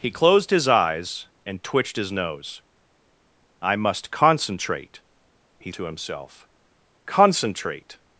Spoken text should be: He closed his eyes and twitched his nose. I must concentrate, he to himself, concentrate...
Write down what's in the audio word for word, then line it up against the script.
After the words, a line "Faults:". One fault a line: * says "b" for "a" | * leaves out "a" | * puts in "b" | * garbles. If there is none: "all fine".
He closed his eyes and twitched his nose. I must concentrate, he to himself, concentrate...
Faults:
all fine